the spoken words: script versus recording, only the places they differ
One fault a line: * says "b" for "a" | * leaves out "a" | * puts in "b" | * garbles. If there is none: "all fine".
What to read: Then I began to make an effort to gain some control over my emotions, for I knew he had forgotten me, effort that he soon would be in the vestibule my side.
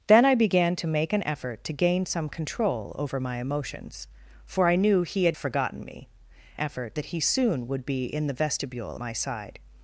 all fine